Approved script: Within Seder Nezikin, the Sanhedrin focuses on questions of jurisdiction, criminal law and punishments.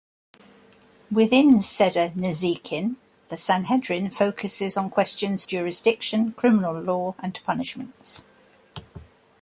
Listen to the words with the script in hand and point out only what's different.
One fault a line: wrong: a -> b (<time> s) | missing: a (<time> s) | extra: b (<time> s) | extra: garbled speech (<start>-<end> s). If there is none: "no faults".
missing: of (5.5 s)